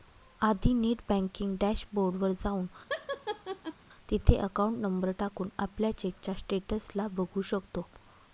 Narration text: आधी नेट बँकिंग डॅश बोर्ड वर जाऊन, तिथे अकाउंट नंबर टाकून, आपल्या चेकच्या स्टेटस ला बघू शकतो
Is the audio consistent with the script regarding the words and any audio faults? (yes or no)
no